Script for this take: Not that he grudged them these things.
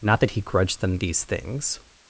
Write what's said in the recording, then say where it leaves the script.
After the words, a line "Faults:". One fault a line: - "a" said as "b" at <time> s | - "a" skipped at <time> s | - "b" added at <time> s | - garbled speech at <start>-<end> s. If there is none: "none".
Not that he grudged them these things.
Faults:
none